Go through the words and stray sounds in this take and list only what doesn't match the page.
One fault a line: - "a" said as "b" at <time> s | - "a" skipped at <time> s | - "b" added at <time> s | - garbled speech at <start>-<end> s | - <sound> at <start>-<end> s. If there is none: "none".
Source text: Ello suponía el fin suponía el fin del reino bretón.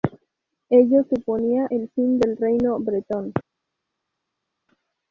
- "suponía el fin" skipped at 2.2 s